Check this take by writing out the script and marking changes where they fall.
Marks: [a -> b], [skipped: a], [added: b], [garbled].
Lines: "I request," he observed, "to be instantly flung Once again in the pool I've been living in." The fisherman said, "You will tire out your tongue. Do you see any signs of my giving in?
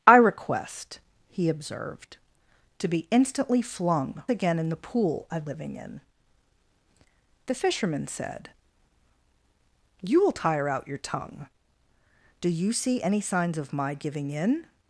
"I request," he observed, "to be instantly flung [skipped: Once] again in the pool I've [skipped: been] living in." The fisherman said, "You will tire out your tongue. Do you see any signs of my giving in?